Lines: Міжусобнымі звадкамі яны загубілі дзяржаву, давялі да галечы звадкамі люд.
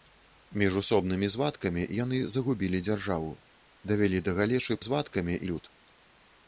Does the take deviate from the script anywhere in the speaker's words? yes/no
no